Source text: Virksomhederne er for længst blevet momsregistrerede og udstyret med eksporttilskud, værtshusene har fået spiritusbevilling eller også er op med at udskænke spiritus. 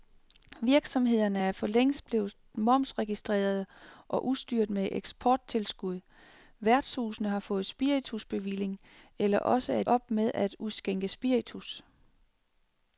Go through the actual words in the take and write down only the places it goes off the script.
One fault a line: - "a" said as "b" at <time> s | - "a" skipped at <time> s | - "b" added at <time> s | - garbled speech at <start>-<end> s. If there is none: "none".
none